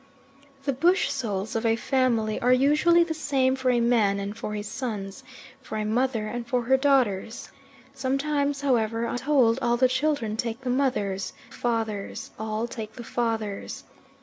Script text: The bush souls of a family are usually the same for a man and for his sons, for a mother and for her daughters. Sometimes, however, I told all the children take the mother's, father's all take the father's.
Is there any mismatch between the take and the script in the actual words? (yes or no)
no